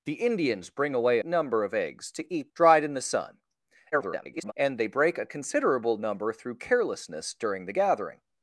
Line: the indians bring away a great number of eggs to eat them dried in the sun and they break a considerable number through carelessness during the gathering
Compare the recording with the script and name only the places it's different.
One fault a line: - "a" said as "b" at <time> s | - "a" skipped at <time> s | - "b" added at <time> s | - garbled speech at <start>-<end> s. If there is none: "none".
- "a great" skipped at 1.2 s
- "them" skipped at 2.5 s
- garbled speech at 3.9-4.5 s